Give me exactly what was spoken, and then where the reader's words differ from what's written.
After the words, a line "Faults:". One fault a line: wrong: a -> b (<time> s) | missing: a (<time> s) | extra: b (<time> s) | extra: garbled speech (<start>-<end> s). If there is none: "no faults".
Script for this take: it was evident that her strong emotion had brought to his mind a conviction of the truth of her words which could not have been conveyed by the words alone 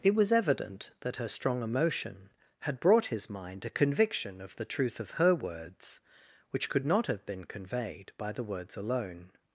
it was evident that her strong emotion had brought his mind a conviction of the truth of her words which could not have been conveyed by the words alone
Faults:
missing: to (3.1 s)